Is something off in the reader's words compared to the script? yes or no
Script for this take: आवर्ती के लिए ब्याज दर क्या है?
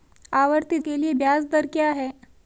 no